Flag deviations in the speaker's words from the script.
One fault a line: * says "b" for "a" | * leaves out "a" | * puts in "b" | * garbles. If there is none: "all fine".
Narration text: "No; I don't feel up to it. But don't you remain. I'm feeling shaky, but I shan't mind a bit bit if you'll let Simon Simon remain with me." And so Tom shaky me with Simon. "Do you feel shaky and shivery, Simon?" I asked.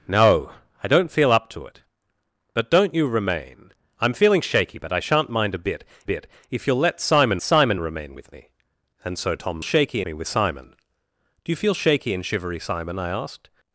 all fine